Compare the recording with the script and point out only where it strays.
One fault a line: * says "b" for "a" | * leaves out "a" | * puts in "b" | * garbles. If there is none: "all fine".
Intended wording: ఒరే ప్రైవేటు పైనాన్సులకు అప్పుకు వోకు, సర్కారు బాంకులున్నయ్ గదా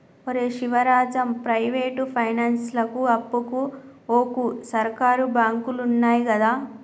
* puts in "శివరాజం"